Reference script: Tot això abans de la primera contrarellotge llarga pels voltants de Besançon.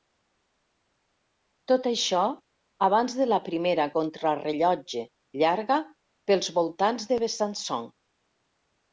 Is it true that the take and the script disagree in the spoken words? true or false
false